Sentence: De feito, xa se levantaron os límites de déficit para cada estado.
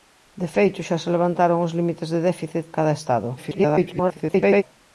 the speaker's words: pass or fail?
fail